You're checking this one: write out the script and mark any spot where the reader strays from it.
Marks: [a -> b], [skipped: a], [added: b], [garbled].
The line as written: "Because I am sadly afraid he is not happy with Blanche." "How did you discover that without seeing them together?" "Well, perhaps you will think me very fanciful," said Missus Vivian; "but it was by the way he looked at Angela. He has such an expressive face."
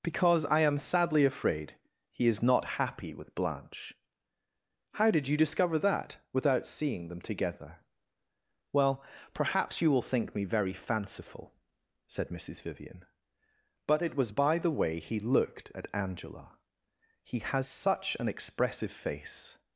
"Because I am sadly afraid he is not happy with Blanche." "How did you discover that without seeing them together?" "Well, perhaps you will think me very fanciful," said Missus Vivian; "but it was by the way he looked at Angela. He has such an expressive face."